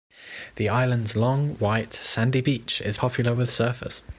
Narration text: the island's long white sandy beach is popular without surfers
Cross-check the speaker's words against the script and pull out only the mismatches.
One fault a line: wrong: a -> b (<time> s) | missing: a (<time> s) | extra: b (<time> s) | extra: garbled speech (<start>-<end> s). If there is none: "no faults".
wrong: without -> with (3.3 s)